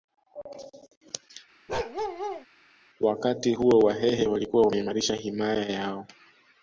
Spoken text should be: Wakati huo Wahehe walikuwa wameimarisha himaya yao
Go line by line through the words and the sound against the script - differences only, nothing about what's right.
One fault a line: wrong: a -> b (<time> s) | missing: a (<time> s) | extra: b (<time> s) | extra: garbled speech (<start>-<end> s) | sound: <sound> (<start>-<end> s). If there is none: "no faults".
sound: bark (1.7-2.5 s)